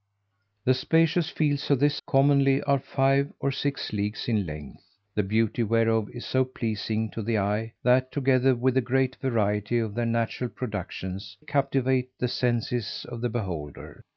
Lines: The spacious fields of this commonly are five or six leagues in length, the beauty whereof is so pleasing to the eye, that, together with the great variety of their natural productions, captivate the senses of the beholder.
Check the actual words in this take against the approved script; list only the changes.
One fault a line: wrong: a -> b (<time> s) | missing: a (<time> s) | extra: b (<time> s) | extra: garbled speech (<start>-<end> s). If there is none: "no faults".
no faults